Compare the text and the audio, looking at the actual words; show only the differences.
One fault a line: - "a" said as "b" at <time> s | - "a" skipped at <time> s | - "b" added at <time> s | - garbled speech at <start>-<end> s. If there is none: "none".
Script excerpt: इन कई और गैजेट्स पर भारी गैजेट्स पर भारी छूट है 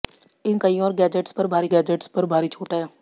none